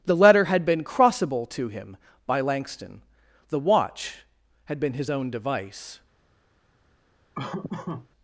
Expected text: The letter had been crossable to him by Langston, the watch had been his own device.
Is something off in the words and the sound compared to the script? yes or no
yes